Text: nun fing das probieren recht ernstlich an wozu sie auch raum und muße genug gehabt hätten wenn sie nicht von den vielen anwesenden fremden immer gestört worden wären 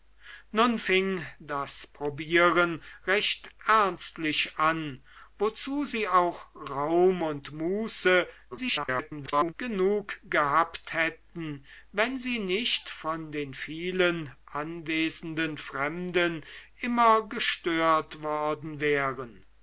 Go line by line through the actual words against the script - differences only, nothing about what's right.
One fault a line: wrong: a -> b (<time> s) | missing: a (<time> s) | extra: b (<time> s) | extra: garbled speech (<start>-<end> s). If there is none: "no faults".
extra: garbled speech (8.5-9.5 s)